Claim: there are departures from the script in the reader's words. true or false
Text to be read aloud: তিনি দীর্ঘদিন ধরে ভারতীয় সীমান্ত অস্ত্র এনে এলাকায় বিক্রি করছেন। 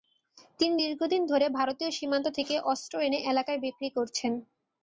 true